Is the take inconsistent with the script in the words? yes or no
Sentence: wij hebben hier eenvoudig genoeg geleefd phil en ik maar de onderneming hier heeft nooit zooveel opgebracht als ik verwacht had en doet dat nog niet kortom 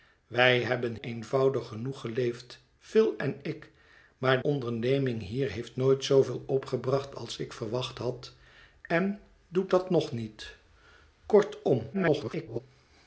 yes